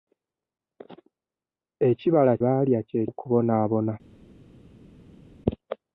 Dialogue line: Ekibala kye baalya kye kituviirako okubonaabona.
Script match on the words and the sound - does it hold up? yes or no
no